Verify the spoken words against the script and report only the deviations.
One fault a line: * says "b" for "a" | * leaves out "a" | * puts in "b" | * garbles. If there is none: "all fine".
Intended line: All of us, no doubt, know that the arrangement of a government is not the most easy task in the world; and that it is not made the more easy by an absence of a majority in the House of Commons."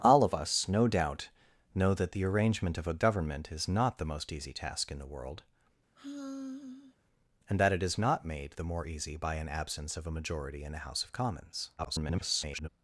* garbles